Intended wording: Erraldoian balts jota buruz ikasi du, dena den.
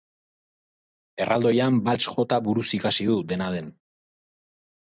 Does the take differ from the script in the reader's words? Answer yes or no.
no